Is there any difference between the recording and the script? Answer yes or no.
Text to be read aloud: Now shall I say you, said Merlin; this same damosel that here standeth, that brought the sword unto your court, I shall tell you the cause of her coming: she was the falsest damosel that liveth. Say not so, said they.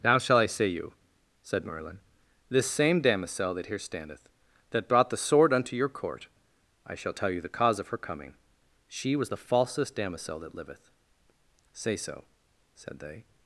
yes